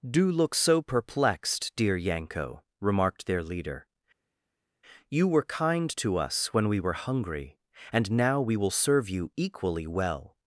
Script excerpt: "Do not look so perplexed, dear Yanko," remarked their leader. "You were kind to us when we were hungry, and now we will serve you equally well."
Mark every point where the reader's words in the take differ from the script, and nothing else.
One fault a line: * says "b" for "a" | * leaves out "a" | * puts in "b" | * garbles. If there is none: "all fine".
* leaves out "not"